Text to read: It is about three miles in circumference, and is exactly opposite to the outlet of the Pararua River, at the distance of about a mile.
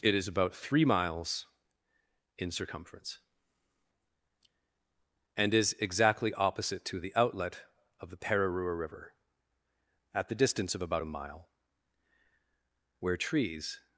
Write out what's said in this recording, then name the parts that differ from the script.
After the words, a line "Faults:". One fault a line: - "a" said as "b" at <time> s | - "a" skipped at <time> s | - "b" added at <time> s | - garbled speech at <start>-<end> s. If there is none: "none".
It is about three miles in circumference, and is exactly opposite to the outlet of the Pararua River, at the distance of about a mile. Where trees
Faults:
- "Where trees" added at 13.0 s